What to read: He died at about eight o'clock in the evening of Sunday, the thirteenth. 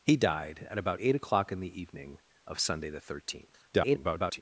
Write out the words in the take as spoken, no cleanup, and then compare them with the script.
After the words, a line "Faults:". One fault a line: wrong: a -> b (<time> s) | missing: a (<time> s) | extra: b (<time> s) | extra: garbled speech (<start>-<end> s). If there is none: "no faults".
He died at about eight o'clock in the evening of Sunday, the thirteenth. [garbled]
Faults:
extra: garbled speech (3.7-4.4 s)